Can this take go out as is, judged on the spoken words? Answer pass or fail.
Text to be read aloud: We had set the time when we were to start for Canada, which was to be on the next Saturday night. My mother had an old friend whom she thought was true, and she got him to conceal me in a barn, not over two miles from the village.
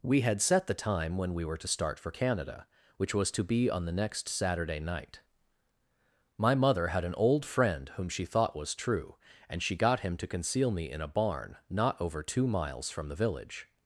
pass